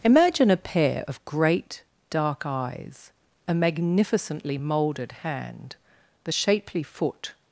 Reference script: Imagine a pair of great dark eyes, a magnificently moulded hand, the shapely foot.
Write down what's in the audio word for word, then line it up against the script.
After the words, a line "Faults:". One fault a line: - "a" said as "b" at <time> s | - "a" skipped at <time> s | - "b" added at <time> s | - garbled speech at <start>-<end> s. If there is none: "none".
Imagine a pair of great dark eyes, a magnificently moulded hand, the shapely foot.
Faults:
none